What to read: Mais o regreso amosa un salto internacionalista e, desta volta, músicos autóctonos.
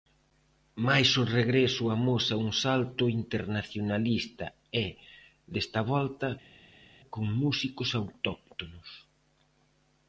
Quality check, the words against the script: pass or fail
fail